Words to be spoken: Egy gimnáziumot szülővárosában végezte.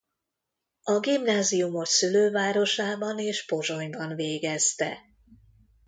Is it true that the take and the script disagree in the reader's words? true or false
true